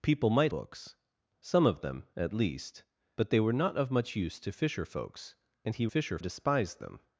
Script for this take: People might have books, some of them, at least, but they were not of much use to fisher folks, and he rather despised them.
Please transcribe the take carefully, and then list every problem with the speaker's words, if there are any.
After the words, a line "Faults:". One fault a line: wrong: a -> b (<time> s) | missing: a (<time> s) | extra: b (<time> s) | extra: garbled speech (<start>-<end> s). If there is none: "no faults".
People might books, some of them, at least, but they were not of much use to fisher folks, and he fisher despised them.
Faults:
missing: have (0.5 s)
wrong: rather -> fisher (5.9 s)